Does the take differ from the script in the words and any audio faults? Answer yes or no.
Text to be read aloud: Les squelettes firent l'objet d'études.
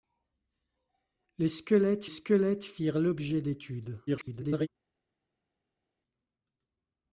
yes